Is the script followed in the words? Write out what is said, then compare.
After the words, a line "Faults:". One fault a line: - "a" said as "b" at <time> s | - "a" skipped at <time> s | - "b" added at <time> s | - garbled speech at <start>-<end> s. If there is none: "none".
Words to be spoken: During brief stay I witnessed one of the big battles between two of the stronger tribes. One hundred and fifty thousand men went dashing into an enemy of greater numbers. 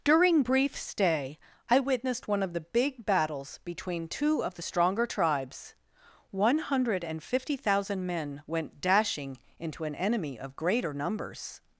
During brief stay I witnessed one of the big battles between two of the stronger tribes. One hundred and fifty thousand men went dashing into an enemy of greater numbers.
Faults:
none